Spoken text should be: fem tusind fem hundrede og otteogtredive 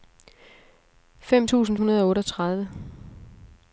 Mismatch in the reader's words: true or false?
true